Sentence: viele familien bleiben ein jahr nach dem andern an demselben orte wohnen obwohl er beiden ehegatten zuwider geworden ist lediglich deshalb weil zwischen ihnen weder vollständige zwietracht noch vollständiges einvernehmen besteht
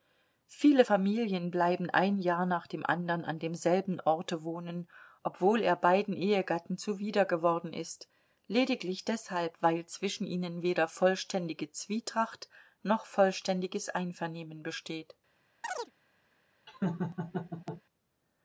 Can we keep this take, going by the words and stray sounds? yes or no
no